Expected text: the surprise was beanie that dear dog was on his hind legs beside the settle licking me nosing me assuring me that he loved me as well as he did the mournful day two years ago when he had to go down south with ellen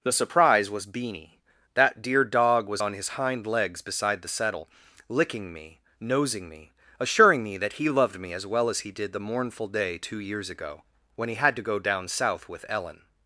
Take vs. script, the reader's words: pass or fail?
pass